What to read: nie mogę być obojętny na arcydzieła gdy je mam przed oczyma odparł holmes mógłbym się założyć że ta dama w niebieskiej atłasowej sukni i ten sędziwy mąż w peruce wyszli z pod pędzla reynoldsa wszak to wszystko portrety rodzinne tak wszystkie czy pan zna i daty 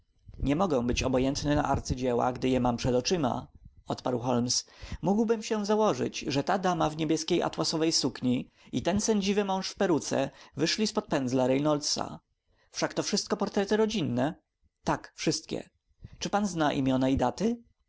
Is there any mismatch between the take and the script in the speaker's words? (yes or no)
yes